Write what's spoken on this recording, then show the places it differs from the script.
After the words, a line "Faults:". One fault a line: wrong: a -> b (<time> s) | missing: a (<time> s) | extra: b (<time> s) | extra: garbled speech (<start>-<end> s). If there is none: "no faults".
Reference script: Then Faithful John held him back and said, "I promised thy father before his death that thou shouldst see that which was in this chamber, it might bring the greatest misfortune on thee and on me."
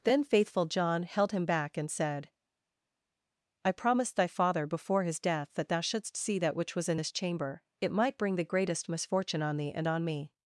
Then Faithful John held him back and said, "I promised thy father before his death that thou shouldst see that which was in this chamber, it might bring the greatest misfortune on thee and on me."
Faults:
no faults